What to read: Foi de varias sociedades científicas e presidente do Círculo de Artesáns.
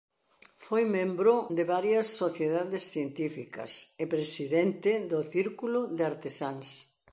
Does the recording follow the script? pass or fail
fail